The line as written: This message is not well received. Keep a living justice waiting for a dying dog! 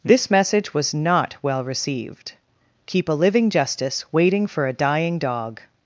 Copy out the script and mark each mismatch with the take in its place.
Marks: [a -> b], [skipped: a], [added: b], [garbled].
This message [is -> was] not well received. Keep a living justice waiting for a dying dog!